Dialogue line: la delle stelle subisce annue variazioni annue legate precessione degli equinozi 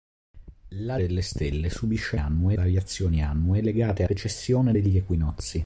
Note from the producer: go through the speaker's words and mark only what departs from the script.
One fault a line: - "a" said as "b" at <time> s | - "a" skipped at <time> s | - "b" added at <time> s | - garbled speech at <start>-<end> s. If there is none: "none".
none